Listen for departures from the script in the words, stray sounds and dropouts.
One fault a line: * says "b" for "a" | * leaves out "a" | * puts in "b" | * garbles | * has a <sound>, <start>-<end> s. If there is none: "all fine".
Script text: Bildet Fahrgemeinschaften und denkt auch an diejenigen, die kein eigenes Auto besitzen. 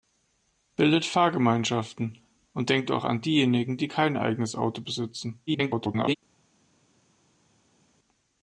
* garbles